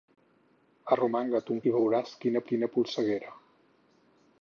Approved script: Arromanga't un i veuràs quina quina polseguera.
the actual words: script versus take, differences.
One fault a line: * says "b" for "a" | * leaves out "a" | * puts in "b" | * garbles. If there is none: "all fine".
all fine